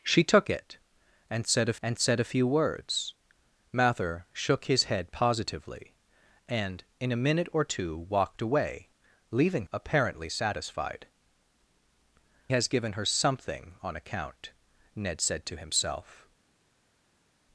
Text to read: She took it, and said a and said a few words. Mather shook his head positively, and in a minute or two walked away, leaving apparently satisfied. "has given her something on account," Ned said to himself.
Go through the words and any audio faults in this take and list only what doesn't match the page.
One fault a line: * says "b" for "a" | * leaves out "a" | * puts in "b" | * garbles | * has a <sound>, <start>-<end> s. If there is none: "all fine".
all fine